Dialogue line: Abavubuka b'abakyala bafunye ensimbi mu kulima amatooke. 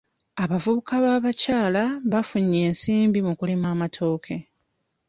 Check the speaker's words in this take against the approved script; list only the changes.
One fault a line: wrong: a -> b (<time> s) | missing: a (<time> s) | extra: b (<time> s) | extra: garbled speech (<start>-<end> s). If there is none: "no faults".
no faults